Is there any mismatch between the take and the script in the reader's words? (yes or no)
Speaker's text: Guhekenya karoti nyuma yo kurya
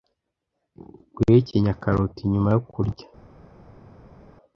no